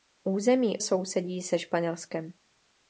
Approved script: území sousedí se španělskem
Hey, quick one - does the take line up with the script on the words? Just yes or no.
yes